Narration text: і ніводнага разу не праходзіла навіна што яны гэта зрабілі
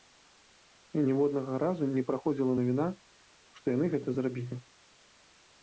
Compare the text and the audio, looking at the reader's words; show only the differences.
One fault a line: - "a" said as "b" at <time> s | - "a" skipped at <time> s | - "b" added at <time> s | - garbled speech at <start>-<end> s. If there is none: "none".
none